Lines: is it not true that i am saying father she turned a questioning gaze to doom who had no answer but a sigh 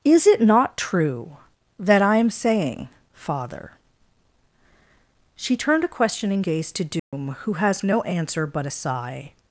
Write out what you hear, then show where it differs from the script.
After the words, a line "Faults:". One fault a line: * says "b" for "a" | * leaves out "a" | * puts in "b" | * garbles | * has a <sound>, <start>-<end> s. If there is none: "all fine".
is it not true that i am saying father she turned a questioning gaze to doom who has no answer but a sigh
Faults:
* has a dropout, 7.0-7.1 s
* says "has" for "had"